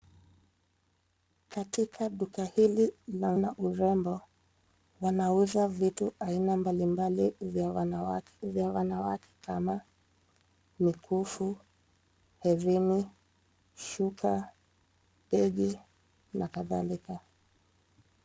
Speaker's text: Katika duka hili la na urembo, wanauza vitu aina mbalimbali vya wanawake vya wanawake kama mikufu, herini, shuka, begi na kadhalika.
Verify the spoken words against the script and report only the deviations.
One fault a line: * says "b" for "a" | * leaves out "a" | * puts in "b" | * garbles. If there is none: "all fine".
all fine